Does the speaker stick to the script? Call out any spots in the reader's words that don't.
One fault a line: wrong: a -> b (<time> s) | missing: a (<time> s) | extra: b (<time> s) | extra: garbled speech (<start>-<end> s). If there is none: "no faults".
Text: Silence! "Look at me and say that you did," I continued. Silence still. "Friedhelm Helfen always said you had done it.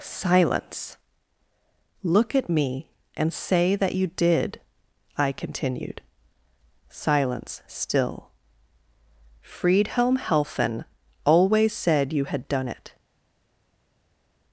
no faults